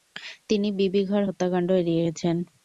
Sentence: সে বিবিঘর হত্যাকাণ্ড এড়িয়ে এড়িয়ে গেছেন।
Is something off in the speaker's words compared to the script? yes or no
yes